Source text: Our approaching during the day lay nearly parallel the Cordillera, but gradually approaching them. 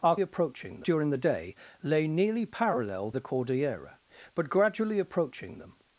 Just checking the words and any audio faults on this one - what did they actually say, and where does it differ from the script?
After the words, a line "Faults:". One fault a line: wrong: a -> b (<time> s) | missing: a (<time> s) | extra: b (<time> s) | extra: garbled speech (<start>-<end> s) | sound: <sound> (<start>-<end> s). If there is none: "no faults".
Our approaching during the day lay nearly parallel the Cordillera, but gradually approaching them.
Faults:
no faults